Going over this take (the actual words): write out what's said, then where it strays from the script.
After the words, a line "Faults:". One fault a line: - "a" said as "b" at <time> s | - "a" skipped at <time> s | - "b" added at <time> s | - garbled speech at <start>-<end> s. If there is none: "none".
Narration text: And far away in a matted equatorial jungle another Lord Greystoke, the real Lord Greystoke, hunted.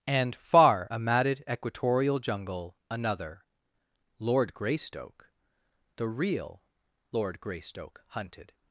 And far a matted equatorial jungle another Lord Greystoke, the real Lord Greystoke, hunted.
Faults:
- "away in" skipped at 0.9 s